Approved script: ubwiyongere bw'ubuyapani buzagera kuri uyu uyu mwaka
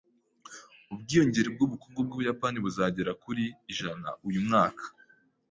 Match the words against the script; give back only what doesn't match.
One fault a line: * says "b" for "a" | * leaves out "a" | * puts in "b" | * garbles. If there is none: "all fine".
* puts in "bw'ubukungu"
* leaves out "uyu"